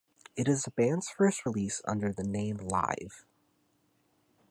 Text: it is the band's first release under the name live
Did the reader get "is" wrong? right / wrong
right